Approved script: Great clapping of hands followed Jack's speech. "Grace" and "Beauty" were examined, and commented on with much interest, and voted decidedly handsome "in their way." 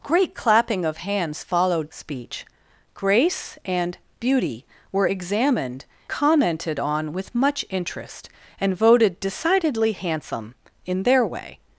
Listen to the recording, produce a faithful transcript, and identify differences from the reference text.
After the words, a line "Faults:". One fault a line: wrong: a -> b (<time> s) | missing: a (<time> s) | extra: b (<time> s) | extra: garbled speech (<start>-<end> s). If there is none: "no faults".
Great clapping of hands followed Speech. "Grace" and "Beauty" were examined, commented on with much interest, and voted decidedly handsome "in their way."
Faults:
missing: Jack's (1.9 s)
missing: and (5.8 s)